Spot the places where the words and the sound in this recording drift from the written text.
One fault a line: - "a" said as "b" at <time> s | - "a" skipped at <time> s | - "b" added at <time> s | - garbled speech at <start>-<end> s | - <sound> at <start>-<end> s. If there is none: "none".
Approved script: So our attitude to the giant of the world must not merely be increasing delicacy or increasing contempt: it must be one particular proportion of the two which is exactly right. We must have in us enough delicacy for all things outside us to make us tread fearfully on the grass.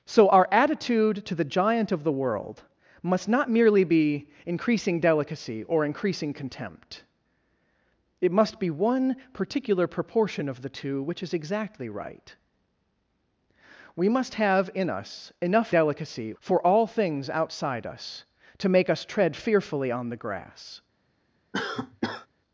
- cough at 21.5-22.3 s